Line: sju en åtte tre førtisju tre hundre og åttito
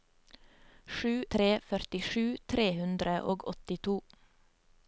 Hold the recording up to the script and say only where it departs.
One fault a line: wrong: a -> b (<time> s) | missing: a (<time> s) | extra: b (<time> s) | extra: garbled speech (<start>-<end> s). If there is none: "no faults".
missing: en åtte (1.2 s)